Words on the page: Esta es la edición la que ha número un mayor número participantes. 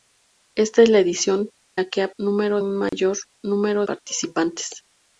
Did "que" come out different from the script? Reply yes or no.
no